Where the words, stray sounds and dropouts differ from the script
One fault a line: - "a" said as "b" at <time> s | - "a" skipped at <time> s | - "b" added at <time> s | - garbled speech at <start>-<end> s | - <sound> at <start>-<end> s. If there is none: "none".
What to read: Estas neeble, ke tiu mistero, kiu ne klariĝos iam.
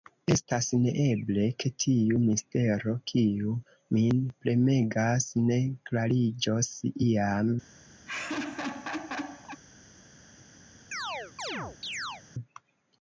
- "min premegas" added at 4.0 s
- laugh at 8.1-9.6 s
- chirp at 10.9-12.2 s